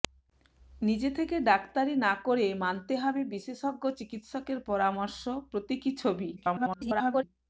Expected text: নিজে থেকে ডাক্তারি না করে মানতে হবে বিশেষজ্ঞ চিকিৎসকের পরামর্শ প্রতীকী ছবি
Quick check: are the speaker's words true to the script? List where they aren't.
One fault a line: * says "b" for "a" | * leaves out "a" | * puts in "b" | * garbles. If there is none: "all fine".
* garbles